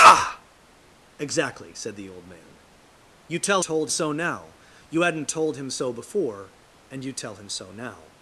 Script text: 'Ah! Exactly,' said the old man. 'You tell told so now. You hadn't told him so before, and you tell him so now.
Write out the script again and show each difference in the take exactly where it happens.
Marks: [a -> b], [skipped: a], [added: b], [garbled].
'Ah! Exactly,' said the old man. 'You tell told so now. You hadn't told him so before, and you tell him so now.